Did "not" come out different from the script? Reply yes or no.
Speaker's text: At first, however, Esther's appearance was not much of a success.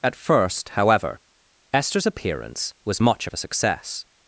yes